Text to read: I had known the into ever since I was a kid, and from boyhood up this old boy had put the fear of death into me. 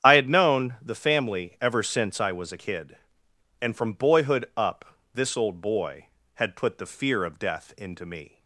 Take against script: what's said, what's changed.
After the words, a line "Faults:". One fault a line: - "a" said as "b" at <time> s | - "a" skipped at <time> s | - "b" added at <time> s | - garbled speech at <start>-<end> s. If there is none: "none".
I had known the family ever since I was a kid, and from boyhood up this old boy had put the fear of death into me.
Faults:
- "into" said as "family" at 0.9 s